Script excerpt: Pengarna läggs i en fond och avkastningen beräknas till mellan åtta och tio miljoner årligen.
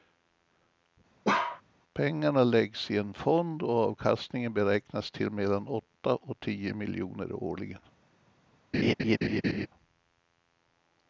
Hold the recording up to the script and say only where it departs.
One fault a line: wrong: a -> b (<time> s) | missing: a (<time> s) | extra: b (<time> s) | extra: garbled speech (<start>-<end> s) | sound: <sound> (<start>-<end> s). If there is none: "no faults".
sound: bark (1.2-1.6 s)
sound: laugh (8.7-9.7 s)